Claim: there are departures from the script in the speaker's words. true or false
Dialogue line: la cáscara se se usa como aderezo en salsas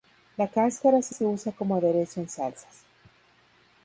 false